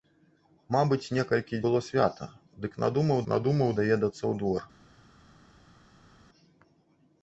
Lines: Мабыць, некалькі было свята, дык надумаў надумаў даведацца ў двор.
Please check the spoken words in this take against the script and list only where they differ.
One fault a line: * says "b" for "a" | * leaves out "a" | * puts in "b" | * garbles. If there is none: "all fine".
all fine